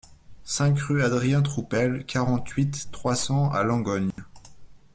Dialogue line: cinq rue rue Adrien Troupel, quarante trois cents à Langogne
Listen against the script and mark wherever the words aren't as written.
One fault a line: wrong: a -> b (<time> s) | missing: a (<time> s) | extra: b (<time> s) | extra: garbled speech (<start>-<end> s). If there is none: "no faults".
missing: rue (1.0 s)
extra: huit (2.5 s)